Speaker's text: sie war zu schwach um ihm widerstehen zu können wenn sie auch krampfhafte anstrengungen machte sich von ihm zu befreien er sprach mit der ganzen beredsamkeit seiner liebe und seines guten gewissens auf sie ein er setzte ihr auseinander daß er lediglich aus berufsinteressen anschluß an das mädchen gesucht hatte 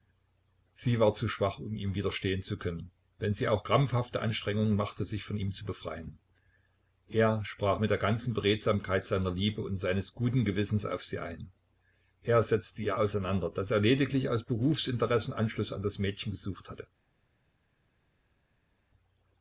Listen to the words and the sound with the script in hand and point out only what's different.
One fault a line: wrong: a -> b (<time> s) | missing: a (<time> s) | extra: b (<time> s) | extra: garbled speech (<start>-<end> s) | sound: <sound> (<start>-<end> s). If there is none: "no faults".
no faults